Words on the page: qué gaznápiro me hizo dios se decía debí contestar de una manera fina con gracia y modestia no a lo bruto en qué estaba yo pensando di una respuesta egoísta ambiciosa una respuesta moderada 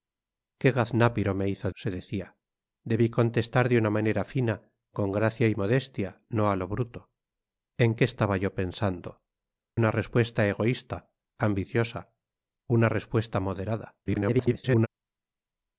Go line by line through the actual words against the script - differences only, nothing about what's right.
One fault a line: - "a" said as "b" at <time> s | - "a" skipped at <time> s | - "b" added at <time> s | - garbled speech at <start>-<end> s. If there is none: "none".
- "dios" skipped at 1.7 s
- "di" skipped at 9.2 s
- garbled speech at 14.1-14.9 s